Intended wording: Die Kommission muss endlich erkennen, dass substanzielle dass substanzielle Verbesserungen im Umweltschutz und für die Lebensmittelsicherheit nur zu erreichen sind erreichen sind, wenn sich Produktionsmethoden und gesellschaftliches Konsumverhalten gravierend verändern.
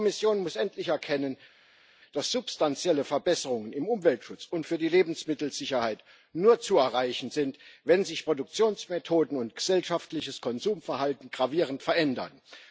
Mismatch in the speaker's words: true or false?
true